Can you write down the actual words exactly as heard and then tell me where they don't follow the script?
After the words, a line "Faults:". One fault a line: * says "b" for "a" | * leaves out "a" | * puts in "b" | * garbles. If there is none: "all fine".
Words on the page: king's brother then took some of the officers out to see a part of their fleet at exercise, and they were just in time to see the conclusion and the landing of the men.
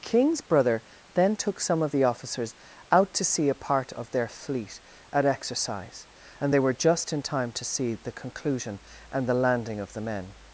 king's brother then took some of the officers out to see a part of their fleet at exercise, and they were just in time to see the conclusion and the landing of the men.
Faults:
all fine